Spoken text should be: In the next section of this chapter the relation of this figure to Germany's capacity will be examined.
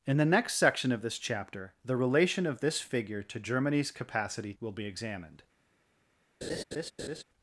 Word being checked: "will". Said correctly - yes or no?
yes